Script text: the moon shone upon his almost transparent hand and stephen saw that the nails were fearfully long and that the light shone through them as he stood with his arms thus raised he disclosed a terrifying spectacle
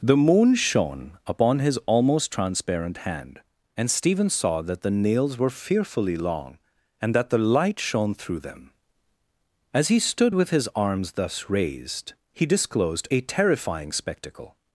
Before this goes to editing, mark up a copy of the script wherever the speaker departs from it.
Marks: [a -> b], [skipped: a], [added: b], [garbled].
the moon shone upon his almost transparent hand and stephen saw that the nails were fearfully long and that the light shone through them as he stood with his arms thus raised he disclosed a terrifying spectacle